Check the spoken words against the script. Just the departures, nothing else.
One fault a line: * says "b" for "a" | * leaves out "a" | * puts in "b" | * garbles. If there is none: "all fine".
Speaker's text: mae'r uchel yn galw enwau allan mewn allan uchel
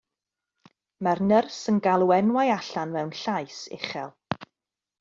* says "nyrs" for "uchel"
* says "llais" for "allan"